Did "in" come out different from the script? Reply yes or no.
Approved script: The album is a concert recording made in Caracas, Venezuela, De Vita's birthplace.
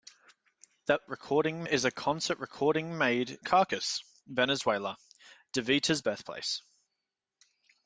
yes